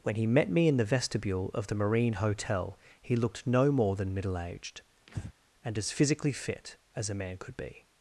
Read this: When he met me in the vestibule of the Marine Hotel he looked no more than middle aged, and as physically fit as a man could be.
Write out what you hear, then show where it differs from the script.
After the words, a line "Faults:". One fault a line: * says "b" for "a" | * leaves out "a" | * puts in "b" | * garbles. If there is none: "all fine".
When he met me in the vestibule of the Marine Hotel he looked no more than middle aged, and as physically fit as a man could be.
Faults:
all fine